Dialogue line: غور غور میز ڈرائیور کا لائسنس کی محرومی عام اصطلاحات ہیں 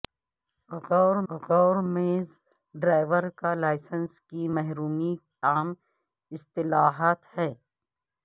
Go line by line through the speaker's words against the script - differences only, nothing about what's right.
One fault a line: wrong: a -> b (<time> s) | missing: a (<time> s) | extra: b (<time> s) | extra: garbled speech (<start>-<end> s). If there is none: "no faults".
no faults